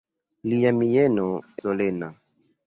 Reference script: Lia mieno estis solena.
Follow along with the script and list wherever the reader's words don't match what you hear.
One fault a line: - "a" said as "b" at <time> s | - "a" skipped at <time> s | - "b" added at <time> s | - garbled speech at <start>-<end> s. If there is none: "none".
- "estis" skipped at 1.2 s